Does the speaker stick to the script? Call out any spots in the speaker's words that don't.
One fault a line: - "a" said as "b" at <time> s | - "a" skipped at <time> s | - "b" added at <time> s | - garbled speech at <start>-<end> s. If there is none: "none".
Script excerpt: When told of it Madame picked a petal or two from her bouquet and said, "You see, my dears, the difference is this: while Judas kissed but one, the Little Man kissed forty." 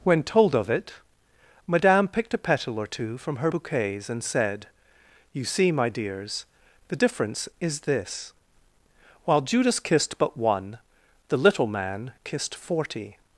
- "bouquet" said as "bouquets" at 3.5 s